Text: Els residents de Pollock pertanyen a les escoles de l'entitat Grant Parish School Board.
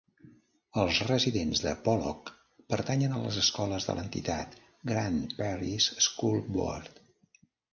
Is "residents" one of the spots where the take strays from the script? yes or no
no